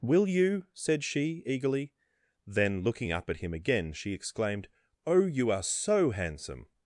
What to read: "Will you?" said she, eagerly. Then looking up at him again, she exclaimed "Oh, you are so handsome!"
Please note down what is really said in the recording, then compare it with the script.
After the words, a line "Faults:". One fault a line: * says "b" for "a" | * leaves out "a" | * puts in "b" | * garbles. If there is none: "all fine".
"Will you?" said she, eagerly. Then looking up at him again, she exclaimed "Oh, you are so handsome!"
Faults:
all fine